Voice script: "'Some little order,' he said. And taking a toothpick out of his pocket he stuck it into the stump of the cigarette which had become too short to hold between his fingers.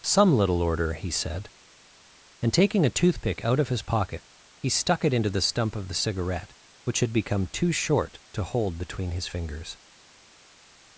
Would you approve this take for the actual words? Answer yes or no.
yes